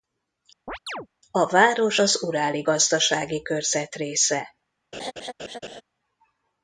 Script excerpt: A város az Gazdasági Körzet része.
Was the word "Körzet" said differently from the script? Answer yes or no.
no